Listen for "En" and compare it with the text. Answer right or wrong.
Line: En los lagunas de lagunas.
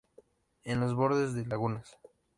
right